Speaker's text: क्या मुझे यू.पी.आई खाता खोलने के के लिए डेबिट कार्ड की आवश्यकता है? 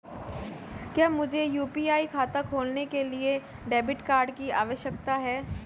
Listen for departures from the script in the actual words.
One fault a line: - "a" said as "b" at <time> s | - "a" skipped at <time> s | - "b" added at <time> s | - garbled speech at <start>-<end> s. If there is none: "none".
- "के" skipped at 3.0 s